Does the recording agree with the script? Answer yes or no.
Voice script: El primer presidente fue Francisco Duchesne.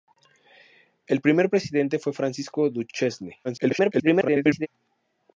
no